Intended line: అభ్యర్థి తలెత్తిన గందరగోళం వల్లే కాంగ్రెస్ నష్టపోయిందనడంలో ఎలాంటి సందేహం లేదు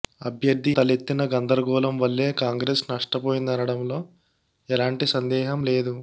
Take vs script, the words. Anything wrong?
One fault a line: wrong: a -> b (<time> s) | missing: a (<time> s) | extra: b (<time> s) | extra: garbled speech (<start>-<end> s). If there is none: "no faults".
no faults